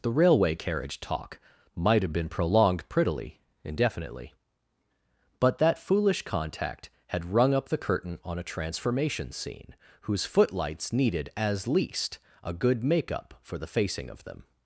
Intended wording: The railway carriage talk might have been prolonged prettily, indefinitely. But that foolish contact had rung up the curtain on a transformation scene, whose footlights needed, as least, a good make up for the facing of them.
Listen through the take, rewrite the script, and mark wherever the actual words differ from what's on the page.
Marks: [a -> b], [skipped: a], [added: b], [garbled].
The railway carriage talk might have been prolonged prettily, indefinitely. But that foolish contact had rung up the curtain on a transformation scene, whose footlights needed, as least, a good make up for the facing of them.